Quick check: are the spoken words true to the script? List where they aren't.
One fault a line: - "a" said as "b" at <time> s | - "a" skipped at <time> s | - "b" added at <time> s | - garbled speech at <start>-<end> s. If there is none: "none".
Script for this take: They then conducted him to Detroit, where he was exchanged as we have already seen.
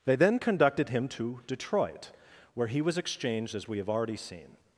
none